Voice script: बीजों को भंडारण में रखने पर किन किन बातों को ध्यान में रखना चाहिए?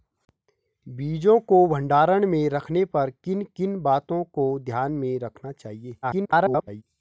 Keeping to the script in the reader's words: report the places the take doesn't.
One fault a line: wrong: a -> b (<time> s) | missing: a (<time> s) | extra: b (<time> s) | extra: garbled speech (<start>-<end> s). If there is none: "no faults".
extra: garbled speech (6.0-6.8 s)